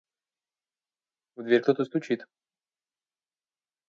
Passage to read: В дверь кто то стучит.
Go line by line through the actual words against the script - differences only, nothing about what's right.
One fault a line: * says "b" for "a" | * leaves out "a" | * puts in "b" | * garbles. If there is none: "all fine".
all fine